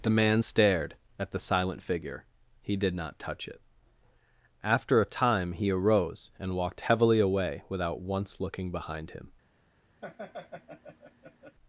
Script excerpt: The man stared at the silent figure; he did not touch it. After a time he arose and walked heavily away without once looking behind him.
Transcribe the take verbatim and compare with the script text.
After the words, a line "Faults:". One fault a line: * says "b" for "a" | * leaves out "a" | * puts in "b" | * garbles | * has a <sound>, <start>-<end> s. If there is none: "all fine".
The man stared at the silent figure; he did not touch it. After a time he arose and walked heavily away without once looking behind him.
Faults:
* has a laugh, 10.0-11.6 s